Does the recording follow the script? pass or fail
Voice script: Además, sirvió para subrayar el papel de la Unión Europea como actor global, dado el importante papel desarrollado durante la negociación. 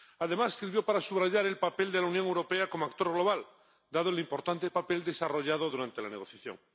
pass